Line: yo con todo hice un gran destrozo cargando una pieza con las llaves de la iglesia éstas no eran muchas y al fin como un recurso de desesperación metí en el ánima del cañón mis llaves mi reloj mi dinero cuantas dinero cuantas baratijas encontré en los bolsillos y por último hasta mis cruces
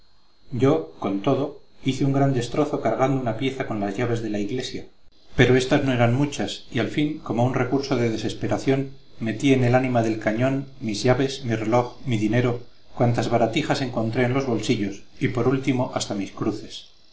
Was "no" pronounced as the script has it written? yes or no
yes